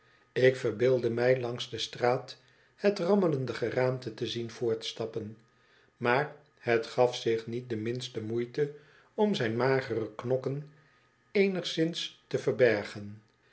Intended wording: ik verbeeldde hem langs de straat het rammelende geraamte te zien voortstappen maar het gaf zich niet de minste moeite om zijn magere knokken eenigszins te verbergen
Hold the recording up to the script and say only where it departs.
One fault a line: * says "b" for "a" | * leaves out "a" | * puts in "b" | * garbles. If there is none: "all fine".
* says "mij" for "hem"